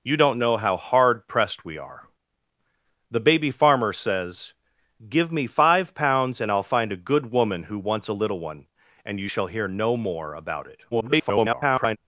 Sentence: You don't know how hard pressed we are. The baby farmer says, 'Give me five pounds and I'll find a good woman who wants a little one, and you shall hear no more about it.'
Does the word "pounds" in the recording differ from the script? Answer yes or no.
no